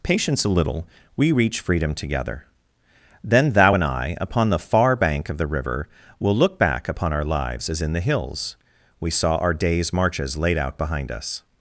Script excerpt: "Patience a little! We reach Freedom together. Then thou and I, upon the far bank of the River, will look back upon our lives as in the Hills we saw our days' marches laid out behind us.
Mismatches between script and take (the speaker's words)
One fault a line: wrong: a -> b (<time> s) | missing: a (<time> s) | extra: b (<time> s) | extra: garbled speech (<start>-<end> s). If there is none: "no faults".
no faults